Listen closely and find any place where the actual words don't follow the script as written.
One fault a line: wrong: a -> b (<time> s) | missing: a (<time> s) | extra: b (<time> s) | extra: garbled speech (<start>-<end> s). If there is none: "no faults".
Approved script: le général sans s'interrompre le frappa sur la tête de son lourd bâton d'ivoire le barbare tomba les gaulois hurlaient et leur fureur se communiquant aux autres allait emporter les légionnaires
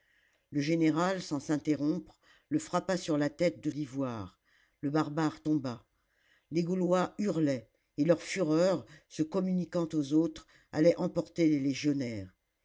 missing: son lourd bâton (3.7 s)